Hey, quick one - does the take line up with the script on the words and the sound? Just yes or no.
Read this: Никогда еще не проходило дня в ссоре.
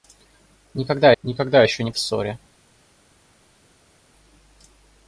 no